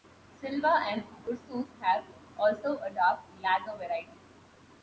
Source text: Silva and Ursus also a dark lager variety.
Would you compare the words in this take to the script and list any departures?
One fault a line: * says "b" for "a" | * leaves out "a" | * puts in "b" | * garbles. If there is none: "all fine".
* puts in "have"